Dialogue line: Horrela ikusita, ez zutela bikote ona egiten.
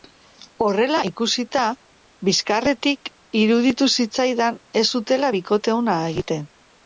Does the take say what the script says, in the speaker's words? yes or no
no